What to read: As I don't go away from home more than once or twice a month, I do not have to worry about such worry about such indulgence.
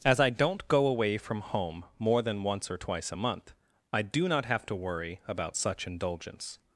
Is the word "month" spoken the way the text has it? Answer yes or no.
yes